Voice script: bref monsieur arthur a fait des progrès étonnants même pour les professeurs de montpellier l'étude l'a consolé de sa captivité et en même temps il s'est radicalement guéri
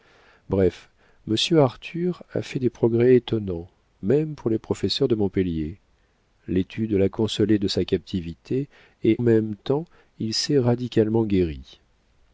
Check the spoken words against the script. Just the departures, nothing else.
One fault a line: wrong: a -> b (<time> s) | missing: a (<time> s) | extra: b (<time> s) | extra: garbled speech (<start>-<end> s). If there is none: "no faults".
missing: en (9.2 s)